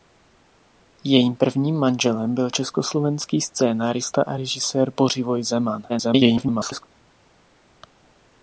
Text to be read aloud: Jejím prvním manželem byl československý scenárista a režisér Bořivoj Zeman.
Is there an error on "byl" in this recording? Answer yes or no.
no